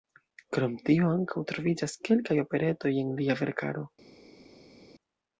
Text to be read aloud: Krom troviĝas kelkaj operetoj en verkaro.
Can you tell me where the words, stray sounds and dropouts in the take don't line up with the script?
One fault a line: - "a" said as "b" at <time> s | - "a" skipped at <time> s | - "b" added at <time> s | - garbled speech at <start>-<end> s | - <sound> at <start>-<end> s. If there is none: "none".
- "tio ankaŭ" added at 0.9 s
- "lia" added at 3.2 s